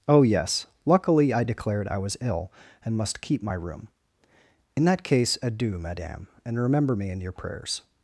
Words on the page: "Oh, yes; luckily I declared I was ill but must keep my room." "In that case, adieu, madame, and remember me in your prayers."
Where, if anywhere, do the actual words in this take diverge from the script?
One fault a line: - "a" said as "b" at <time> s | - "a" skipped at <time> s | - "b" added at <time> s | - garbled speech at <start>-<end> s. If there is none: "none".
- "but" said as "and" at 2.8 s